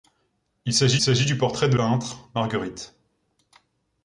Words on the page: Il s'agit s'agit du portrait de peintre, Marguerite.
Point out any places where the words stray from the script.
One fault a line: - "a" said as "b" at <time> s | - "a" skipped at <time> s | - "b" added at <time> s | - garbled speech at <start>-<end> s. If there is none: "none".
none